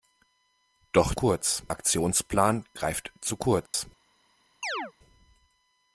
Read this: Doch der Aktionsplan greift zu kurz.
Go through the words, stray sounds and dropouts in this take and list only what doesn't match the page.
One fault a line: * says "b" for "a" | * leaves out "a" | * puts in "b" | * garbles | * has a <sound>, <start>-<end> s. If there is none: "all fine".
* says "kurz" for "der"
* has a dropout, 3.7-3.7 s
* has a chirp, 4.6-4.9 s